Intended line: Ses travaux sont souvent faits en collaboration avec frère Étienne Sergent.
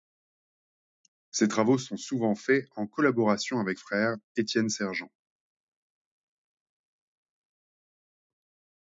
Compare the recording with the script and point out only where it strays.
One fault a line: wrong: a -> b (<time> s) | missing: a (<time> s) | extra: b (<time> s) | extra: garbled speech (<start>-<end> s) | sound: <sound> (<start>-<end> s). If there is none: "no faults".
no faults